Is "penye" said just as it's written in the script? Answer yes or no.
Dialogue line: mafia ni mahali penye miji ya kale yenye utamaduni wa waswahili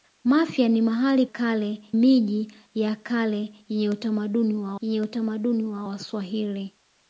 no